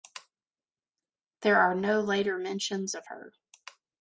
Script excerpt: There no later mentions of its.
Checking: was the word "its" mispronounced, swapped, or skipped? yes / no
yes